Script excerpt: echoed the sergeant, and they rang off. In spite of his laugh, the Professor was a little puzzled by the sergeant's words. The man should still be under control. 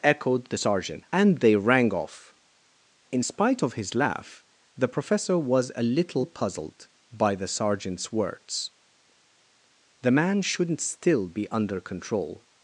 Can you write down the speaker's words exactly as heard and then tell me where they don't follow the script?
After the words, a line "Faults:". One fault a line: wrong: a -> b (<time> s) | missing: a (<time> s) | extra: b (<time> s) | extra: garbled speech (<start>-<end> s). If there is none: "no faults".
echoed the sergeant, and they rang off. In spite of his laugh, the Professor was a little puzzled by the sergeant's words. The man shouldn't still be under control.
Faults:
wrong: should -> shouldn't (10.4 s)